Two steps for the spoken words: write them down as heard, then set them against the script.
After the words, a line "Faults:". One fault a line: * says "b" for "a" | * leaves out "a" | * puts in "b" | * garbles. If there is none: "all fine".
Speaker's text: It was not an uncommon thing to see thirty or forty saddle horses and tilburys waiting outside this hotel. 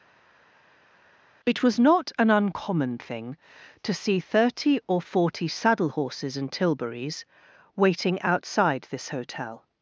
It was not an uncommon thing to see thirty or forty saddle horses and tilburys waiting outside this hotel.
Faults:
all fine